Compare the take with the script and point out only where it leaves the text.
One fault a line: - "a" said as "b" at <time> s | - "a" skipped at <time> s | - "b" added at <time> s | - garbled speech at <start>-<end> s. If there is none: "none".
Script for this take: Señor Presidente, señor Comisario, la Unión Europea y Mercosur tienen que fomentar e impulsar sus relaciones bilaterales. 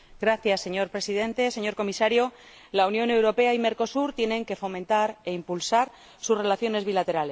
none